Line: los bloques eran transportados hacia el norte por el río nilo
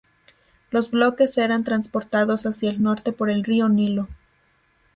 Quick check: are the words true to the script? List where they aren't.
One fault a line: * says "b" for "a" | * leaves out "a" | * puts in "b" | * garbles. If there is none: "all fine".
all fine